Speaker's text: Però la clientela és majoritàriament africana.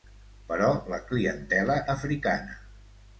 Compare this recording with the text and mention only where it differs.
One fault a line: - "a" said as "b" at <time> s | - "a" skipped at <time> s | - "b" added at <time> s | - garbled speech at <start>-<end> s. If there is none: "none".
- "és majoritàriament" skipped at 1.8 s